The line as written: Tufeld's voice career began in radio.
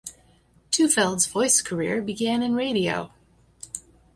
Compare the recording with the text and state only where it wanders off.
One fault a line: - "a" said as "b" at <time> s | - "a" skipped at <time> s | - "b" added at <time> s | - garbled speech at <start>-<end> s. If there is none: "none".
none